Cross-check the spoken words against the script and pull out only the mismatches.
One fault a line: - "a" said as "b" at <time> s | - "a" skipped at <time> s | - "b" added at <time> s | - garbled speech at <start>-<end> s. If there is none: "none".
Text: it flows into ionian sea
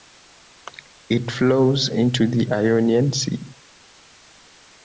- "the" added at 2.3 s